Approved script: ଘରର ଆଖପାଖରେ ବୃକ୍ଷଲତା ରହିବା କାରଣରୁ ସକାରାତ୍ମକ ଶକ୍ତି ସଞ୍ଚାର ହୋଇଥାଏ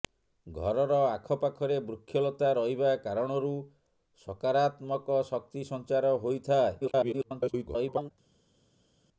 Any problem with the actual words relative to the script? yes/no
yes